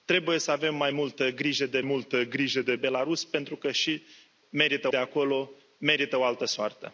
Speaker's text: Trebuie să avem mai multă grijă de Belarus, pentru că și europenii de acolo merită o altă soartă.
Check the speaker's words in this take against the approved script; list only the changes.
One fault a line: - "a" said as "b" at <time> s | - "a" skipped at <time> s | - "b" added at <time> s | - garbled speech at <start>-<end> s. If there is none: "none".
- "multă grijă de" added at 1.8 s
- "europenii" said as "merită" at 4.5 s